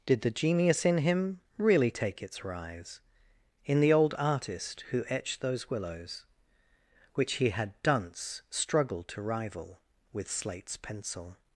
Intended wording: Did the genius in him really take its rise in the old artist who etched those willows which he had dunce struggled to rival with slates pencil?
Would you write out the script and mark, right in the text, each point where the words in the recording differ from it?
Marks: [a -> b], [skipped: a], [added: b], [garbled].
Did the genius in him really take its rise in the old artist who etched those willows which he had dunce struggled to rival with slates pencil?